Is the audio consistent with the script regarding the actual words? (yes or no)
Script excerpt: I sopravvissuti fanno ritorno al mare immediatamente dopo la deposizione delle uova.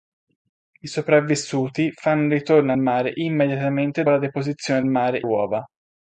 no